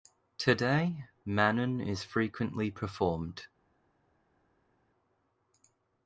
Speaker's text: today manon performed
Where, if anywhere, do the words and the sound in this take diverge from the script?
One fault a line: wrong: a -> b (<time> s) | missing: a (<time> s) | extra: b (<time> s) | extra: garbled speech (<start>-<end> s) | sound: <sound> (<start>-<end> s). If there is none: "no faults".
extra: is frequently (1.8 s)